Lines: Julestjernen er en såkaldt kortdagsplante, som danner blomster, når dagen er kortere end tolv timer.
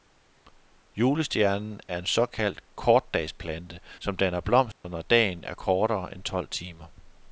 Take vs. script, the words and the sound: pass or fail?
fail